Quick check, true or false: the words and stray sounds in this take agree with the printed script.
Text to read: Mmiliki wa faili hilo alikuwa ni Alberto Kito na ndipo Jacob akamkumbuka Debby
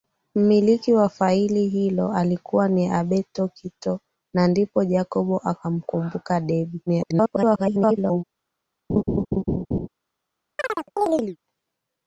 false